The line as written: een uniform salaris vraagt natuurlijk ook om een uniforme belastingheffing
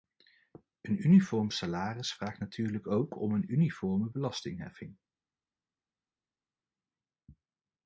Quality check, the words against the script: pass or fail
pass